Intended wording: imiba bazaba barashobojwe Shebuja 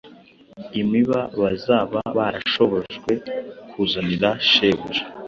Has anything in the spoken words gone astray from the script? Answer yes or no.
yes